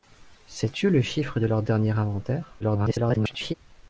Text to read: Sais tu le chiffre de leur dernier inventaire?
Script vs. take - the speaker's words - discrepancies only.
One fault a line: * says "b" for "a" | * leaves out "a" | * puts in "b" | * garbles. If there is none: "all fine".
* garbles